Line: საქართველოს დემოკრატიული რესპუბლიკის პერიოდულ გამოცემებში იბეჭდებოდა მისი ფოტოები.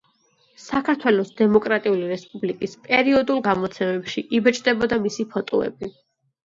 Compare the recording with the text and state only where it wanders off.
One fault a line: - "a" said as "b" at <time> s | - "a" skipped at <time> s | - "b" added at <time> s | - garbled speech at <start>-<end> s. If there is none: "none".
none